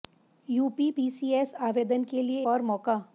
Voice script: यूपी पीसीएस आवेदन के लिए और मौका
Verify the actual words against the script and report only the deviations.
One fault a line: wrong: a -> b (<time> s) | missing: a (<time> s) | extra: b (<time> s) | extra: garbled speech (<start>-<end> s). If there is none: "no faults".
no faults